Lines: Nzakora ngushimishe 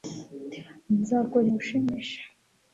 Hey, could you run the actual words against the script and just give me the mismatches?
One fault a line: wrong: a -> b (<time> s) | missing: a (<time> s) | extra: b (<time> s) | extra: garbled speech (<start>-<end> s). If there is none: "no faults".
no faults